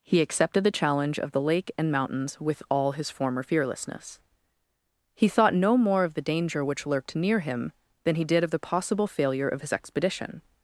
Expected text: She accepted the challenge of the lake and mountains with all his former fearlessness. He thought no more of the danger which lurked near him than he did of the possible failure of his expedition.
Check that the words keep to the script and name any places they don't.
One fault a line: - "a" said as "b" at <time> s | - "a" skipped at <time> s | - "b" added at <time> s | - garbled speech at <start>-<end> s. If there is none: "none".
- "She" said as "He" at 0.0 s